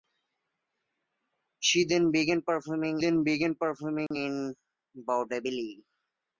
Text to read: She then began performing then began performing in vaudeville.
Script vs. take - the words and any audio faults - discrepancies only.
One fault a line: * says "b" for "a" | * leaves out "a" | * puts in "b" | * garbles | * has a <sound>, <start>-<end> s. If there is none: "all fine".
* has a dropout, 4.1-4.1 s